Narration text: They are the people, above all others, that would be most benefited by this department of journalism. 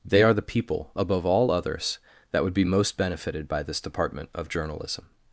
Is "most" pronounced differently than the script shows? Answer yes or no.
no